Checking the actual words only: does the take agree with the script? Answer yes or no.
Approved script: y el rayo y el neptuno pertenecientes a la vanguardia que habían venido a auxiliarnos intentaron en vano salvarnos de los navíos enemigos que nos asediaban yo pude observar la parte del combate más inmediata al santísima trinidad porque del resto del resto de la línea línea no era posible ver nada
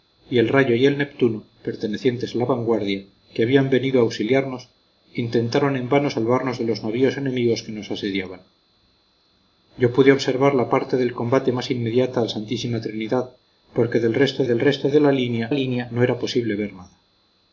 yes